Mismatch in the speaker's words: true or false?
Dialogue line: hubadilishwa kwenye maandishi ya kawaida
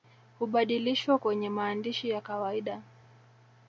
false